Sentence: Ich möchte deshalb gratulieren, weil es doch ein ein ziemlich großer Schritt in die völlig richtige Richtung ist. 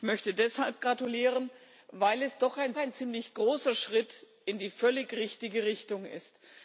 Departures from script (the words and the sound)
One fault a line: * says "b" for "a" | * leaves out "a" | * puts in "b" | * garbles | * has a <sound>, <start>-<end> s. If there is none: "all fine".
all fine